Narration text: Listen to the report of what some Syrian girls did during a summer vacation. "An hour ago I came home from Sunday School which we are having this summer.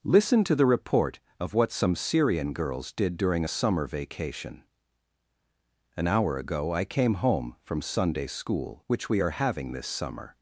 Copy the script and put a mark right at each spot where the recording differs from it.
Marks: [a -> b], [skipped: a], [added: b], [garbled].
Listen to the report of what some Syrian girls did during a summer vacation. "An hour ago I came home from Sunday School which we are having this summer.